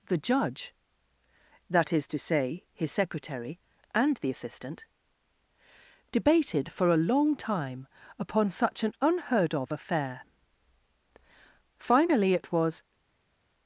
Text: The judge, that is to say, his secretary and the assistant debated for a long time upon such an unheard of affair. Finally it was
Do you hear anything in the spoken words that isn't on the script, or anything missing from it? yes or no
no